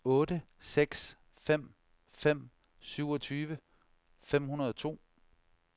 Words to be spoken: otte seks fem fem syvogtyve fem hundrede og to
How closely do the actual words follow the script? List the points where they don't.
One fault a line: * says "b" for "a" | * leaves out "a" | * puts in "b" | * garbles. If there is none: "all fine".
all fine